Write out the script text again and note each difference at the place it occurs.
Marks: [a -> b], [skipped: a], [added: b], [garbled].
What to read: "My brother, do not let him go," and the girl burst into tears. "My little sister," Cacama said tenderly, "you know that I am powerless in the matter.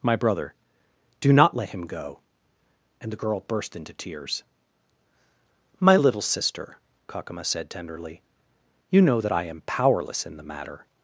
"My brother, do not let him go," and the girl burst into tears. "My little sister," Cacama said tenderly, "you know that I am powerless in the matter.